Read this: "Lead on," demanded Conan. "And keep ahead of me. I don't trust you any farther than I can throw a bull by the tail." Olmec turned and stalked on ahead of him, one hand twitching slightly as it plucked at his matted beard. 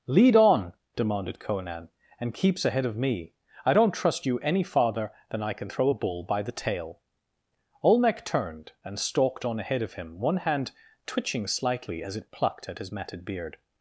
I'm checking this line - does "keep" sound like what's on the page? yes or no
no